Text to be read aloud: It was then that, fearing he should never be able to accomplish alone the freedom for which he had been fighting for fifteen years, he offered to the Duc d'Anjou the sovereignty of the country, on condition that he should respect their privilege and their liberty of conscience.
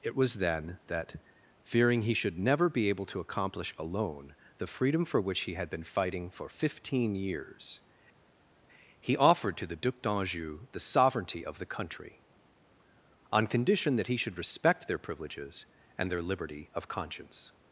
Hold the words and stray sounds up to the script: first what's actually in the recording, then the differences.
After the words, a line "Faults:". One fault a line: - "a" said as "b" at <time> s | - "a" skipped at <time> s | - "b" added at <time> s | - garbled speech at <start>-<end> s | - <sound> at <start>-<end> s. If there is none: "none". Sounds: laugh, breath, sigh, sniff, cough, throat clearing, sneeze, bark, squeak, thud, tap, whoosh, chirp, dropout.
It was then that, fearing he should never be able to accomplish alone the freedom for which he had been fighting for fifteen years, he offered to the Duc d'Anjou the sovereignty of the country, on condition that he should respect their privileges and their liberty of conscience.
Faults:
- "privilege" said as "privileges" at 15.0 s